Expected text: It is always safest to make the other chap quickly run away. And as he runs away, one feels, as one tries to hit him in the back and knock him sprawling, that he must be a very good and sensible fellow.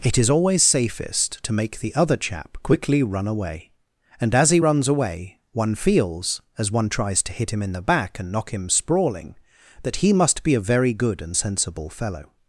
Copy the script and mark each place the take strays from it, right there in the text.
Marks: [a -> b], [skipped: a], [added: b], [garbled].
It is always safest to make the other chap quickly run away. And as he runs away, one feels, as one tries to hit him in the back and knock him sprawling, that he must be a very good and sensible fellow.